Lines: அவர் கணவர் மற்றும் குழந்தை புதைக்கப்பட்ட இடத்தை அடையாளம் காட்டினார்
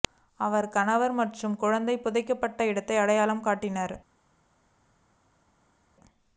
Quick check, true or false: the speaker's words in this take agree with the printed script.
true